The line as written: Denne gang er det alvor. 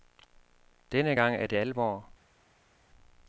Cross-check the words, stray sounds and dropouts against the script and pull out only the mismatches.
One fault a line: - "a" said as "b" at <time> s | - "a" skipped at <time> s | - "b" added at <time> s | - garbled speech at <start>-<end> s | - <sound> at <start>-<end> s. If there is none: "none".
none